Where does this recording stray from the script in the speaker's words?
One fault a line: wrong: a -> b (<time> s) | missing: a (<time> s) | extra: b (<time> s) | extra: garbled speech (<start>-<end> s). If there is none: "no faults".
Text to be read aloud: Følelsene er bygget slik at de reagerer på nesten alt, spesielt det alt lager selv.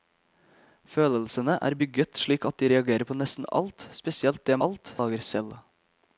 no faults